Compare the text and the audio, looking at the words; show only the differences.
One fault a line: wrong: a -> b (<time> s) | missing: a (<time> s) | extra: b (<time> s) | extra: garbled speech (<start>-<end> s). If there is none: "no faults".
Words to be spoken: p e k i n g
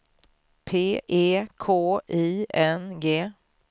no faults